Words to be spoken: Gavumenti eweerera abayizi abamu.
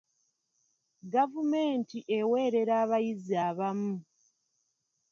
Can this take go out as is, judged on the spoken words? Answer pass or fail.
pass